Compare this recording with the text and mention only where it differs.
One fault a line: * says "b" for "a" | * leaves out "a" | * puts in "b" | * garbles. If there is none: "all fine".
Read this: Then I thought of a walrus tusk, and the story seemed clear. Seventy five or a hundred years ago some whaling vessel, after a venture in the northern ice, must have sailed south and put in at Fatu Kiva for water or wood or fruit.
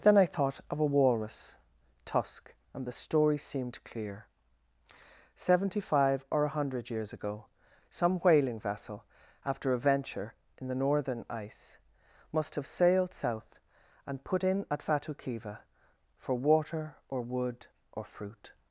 all fine